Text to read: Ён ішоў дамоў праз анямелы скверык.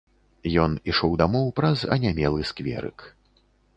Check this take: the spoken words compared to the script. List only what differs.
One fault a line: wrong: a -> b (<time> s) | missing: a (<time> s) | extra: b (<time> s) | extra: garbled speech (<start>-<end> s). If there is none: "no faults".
no faults